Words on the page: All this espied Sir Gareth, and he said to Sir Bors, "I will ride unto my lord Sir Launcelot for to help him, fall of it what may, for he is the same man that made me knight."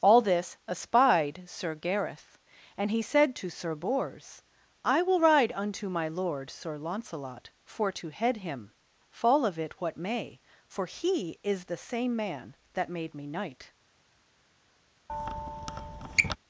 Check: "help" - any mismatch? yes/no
yes